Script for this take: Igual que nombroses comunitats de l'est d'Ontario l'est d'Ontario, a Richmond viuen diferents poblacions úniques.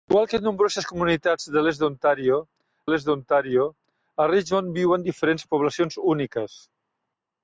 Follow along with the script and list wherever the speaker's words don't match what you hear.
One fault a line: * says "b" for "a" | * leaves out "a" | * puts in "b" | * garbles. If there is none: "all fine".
all fine